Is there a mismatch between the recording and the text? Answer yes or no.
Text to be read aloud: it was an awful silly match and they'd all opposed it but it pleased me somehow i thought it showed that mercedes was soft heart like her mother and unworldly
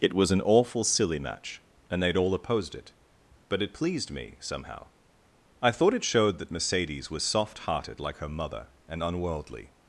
yes